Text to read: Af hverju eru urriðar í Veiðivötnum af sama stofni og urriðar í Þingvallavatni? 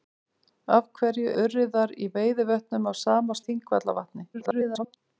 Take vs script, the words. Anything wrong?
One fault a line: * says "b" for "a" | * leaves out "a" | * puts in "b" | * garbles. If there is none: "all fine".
* leaves out "eru"
* leaves out "stofni og urriðar"
* garbles